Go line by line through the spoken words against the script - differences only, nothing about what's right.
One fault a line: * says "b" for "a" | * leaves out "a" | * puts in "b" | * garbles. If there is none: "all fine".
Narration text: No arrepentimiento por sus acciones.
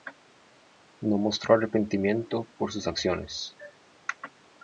* puts in "mostró"